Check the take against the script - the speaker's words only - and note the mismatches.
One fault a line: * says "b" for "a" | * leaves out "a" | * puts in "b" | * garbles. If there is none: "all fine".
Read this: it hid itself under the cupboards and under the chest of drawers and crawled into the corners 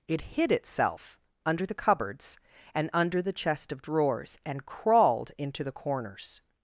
all fine